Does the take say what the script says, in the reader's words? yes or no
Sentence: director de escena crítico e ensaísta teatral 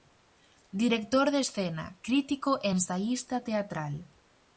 yes